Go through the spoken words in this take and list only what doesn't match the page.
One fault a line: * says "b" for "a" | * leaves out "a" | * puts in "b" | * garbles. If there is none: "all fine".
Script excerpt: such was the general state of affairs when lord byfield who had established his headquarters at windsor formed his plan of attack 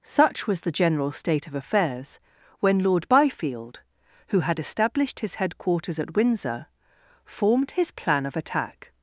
all fine